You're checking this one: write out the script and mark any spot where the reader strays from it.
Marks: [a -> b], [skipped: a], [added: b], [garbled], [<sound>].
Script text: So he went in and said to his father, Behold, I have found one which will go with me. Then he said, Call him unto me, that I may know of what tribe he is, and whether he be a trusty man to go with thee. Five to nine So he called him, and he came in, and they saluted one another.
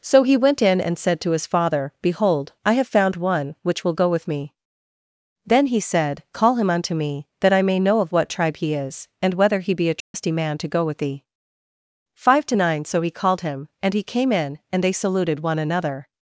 So he went in and said to his father, Behold, I have found one which will go with me. Then he said, Call him unto me, that I may know of what tribe he is, and whether he be a trusty [dropout] man to go with thee. Five to nine So he called him, and he came in, and they saluted one another.